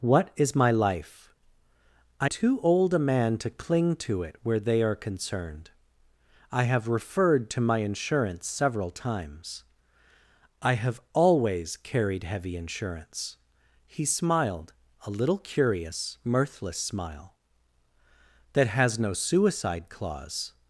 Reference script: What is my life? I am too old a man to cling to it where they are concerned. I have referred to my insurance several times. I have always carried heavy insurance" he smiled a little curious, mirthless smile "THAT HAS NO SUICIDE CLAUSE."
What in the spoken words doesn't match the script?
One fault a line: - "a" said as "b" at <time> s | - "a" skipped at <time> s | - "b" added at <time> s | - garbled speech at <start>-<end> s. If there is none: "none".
- "am" skipped at 2.3 s